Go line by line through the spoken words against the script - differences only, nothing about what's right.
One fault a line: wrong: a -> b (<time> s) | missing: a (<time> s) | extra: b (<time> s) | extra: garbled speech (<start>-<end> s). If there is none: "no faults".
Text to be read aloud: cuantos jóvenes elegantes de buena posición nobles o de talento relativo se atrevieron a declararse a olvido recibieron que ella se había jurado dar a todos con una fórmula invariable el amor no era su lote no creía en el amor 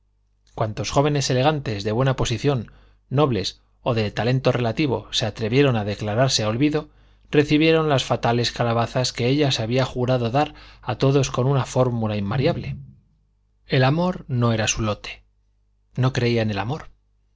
extra: las fatales calabazas (7.9 s)